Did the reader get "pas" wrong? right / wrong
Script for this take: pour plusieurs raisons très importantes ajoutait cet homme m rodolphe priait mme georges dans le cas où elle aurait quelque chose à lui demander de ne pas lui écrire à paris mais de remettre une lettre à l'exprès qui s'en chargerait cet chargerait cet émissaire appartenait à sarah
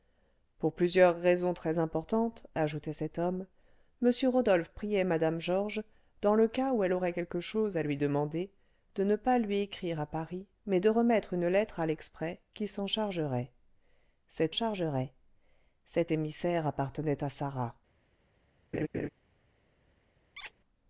right